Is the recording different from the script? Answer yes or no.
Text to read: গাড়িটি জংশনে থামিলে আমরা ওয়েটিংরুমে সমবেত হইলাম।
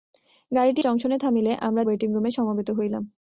no